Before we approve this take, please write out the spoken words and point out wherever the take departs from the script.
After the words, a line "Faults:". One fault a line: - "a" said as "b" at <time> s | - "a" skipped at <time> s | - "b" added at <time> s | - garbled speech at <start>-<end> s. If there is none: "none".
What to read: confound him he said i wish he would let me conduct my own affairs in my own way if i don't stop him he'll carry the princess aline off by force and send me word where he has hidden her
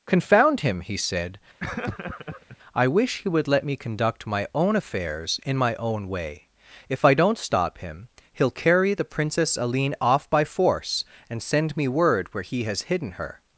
confound him he said i wish he would let me conduct my own affairs in my own way if i don't stop him he'll carry the princess aline off by force and send me word where he has hidden her
Faults:
none